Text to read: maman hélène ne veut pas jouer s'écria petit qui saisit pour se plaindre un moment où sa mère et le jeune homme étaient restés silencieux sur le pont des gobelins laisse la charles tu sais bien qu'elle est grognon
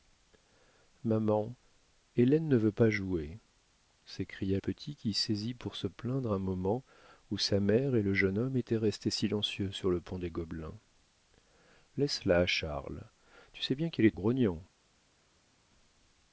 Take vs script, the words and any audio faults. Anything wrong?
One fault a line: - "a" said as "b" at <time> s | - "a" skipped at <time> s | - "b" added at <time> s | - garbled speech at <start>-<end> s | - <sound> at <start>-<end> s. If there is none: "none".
none